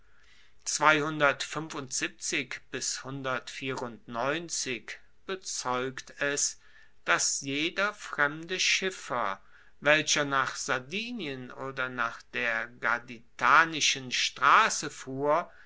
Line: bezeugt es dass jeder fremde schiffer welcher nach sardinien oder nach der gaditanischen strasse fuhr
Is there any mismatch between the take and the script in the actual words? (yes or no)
no